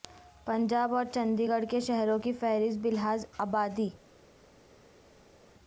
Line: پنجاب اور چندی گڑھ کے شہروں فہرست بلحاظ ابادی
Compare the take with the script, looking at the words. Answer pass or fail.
fail